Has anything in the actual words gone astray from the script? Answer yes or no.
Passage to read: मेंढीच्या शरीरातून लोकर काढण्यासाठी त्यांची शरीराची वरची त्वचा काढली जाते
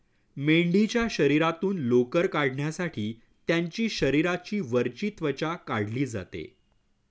no